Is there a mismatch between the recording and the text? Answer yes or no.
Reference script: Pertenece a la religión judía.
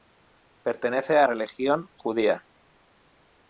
yes